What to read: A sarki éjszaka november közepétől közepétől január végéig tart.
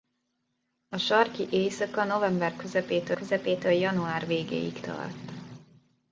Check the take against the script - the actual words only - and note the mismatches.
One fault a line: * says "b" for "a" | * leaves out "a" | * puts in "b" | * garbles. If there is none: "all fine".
all fine